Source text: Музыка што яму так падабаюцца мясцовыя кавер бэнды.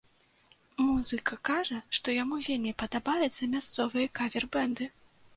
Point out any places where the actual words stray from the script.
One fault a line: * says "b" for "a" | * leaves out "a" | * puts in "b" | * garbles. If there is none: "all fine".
* puts in "кажа"
* says "вельмі" for "так"